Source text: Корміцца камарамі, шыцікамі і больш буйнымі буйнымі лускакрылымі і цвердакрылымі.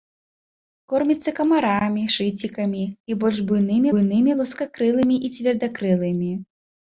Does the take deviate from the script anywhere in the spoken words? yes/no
no